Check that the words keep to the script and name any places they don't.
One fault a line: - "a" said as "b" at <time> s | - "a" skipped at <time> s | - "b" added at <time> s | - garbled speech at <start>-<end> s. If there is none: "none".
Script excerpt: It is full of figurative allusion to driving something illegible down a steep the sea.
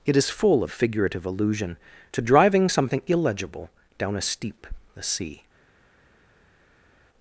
none